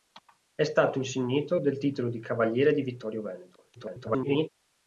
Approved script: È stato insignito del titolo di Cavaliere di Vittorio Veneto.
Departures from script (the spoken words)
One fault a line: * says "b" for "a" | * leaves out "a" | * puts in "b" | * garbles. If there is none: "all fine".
* garbles